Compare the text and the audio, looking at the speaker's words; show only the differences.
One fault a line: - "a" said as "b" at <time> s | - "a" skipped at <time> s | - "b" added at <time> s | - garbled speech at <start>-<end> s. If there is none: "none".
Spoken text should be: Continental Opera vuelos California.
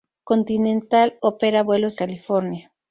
none